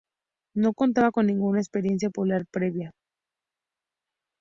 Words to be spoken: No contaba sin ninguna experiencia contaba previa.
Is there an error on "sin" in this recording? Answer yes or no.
yes